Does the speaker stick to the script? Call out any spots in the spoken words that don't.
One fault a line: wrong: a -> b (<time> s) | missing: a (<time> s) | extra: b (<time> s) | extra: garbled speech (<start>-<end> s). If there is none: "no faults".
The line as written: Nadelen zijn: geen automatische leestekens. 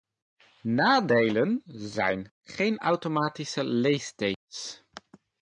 no faults